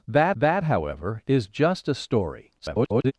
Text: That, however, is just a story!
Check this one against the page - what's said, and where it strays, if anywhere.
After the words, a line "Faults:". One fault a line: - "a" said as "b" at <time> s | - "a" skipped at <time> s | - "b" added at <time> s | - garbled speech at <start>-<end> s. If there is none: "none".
That that, however, is just a story! [garbled]
Faults:
- "that" added at 0.3 s
- garbled speech at 2.6-3.1 s